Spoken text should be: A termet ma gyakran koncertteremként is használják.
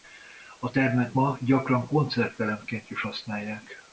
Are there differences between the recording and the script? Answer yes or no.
no